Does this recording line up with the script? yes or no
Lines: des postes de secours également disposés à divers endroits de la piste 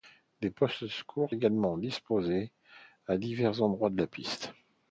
yes